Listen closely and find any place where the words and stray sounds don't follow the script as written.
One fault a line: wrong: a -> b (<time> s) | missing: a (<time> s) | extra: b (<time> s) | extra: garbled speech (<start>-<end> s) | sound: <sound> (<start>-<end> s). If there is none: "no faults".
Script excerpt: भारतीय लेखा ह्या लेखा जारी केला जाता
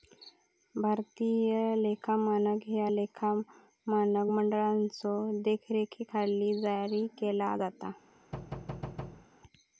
extra: मानक (2.2 s)
extra: मानक मंडळाच्यो देखरेखीखाली (3.9 s)
sound: thud (8.3-9.3 s)